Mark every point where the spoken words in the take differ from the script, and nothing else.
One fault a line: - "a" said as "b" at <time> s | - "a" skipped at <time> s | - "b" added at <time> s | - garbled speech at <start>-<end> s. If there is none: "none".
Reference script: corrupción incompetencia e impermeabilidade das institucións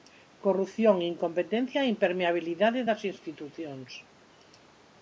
none